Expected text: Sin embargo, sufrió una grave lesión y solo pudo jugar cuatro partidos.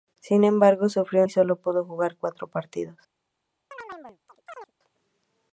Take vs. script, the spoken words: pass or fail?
fail